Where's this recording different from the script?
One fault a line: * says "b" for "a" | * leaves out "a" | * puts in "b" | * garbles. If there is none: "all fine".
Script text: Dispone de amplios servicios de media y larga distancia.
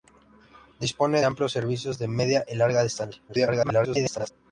* leaves out "de"
* garbles